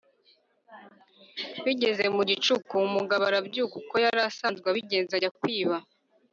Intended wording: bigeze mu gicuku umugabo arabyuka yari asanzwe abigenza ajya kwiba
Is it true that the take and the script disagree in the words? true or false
true